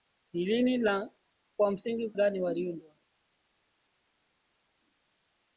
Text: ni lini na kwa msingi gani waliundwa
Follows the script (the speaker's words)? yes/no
yes